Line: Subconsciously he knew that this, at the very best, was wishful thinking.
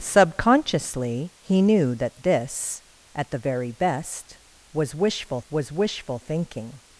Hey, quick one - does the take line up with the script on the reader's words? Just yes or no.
no